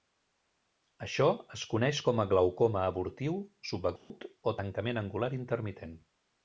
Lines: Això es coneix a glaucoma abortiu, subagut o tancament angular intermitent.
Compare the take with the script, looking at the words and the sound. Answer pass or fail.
fail